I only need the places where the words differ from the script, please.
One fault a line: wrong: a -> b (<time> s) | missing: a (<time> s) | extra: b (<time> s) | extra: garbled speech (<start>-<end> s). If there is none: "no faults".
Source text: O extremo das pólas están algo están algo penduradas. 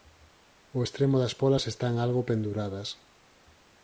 missing: están algo (2.2 s)